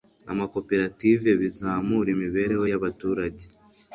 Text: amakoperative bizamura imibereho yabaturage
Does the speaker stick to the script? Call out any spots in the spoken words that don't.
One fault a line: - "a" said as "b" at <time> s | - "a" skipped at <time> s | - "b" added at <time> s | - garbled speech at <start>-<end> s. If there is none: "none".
none